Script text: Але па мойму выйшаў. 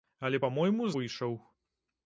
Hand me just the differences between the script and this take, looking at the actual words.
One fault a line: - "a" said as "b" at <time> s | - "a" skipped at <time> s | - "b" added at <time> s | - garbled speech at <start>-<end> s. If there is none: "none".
none